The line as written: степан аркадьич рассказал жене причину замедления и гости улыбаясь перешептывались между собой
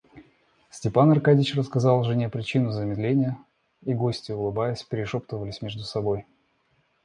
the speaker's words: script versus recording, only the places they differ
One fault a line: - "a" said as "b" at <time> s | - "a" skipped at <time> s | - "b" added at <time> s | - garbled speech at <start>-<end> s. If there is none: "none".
none